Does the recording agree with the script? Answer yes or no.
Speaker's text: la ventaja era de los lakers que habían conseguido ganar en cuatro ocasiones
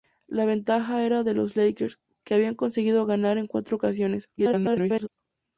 no